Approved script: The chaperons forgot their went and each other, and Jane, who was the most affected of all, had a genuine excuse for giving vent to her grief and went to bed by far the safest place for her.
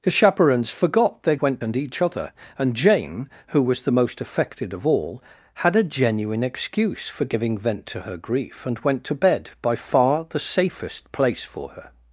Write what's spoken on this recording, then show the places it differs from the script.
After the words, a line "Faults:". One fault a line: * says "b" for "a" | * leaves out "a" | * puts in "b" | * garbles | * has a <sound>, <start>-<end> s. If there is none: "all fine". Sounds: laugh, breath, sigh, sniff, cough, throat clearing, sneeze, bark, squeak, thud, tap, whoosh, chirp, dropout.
The chaperons forgot their went and each other, and Jane, who was the most affected of all, had a genuine excuse for giving vent to her grief and went to bed by far the safest place for her.
Faults:
all fine